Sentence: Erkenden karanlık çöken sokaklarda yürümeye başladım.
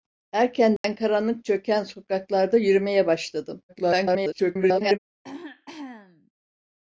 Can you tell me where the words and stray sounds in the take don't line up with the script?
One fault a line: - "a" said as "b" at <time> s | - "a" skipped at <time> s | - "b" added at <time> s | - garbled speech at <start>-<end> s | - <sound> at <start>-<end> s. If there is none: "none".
- dropout at 0.8-0.8 s
- garbled speech at 3.7-5.0 s
- throat clearing at 5.2-6.3 s